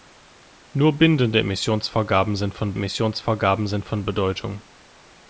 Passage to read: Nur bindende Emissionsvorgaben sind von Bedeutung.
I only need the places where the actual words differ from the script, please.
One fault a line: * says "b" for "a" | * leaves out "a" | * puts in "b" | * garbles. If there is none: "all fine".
* puts in "Emissionsvorgaben sind von"